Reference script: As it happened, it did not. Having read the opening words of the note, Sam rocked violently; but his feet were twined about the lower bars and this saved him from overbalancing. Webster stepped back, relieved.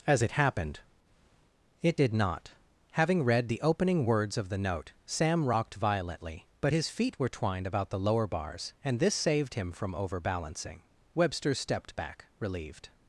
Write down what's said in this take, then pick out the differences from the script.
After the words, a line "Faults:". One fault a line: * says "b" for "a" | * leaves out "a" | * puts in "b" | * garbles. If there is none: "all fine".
As it happened, it did not. Having read the opening words of the note, Sam rocked violently; but his feet were twined about the lower bars and this saved him from overbalancing. Webster stepped back, relieved.
Faults:
all fine